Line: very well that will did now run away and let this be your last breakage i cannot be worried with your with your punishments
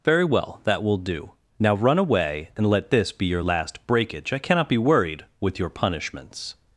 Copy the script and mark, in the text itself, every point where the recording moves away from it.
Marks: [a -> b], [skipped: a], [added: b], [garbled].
very well that will [did -> do] now run away and let this be your last breakage i cannot be worried with your [skipped: with your] punishments